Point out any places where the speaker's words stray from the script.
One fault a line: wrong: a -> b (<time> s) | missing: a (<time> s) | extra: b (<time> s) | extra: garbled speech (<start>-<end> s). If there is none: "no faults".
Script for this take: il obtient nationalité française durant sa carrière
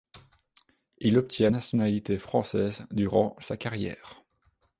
no faults